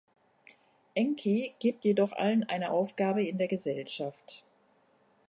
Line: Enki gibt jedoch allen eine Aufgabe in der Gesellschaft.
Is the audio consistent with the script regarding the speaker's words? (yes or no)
yes